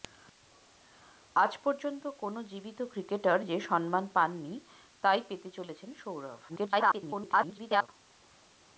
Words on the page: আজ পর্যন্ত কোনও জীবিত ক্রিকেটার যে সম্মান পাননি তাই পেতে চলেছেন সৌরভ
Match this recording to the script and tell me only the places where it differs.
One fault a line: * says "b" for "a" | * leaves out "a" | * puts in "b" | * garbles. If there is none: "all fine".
* garbles